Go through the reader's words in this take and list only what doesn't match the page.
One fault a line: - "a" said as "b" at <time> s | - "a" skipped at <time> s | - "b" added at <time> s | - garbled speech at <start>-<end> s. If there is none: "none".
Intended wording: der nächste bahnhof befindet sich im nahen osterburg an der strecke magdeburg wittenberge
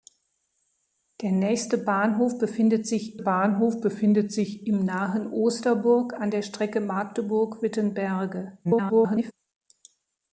- "bahnhof befindet sich" added at 3.2 s
- garbled speech at 8.6-9.3 s